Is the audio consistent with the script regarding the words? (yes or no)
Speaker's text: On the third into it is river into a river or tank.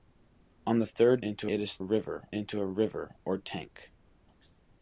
yes